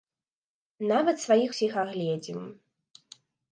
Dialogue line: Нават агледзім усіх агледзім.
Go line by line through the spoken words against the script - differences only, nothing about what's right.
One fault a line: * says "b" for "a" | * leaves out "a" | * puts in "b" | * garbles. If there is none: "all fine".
* says "сваіх" for "агледзім"